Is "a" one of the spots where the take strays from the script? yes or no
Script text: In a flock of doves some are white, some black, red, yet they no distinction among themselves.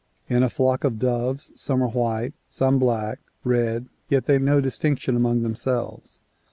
no